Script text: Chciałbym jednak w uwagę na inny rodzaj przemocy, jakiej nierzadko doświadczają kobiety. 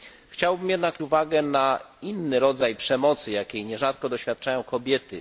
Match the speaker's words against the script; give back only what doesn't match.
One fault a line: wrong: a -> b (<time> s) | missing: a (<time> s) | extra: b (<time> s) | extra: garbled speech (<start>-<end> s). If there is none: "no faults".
no faults